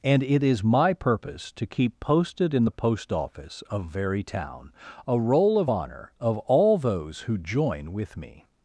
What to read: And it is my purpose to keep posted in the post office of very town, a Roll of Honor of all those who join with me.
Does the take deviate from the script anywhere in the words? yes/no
no